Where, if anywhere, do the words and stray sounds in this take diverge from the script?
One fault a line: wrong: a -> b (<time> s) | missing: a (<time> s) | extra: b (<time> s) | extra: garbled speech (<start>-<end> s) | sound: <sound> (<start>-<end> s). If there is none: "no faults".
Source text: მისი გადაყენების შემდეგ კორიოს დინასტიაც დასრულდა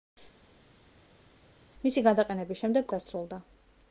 missing: კორიოს დინასტიაც (2.9 s)